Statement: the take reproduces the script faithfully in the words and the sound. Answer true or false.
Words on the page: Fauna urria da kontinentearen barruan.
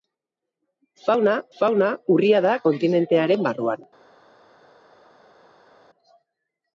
false